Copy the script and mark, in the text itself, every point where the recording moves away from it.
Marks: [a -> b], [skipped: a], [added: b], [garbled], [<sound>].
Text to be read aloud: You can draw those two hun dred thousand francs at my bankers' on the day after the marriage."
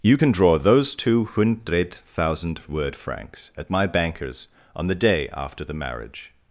You can draw those two [hun dred thousand -> hundred thousand word] francs at my bankers' on the day after the marriage."